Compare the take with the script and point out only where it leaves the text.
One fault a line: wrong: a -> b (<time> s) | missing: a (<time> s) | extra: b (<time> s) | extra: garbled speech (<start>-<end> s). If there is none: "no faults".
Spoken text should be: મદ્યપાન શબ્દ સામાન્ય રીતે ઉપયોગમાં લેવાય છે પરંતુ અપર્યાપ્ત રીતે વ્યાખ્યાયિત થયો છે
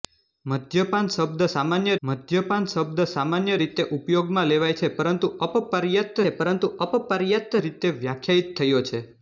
extra: મદ્યપાન શબ્દ સામાન્ય (2.0 s)
extra: છે પરંતુ અપર્યાપ્ત (6.2 s)